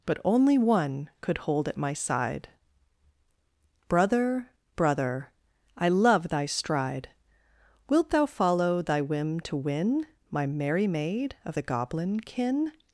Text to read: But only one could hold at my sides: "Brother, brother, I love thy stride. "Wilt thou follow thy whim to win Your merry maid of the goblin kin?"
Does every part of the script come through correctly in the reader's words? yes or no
no